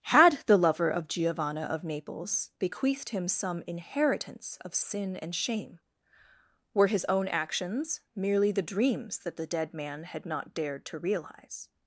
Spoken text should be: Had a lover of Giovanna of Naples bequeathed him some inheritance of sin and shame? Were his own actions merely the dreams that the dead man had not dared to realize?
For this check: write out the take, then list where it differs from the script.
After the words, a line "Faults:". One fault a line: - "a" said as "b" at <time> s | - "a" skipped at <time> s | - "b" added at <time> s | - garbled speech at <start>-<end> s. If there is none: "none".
Had the lover of Giovanna of Naples bequeathed him some inheritance of sin and shame? Were his own actions merely the dreams that the dead man had not dared to realize?
Faults:
- "a" said as "the" at 0.5 s